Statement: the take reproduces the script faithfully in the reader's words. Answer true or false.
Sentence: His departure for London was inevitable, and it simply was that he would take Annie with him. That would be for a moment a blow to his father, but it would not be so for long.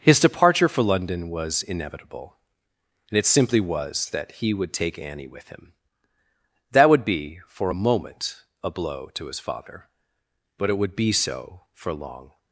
false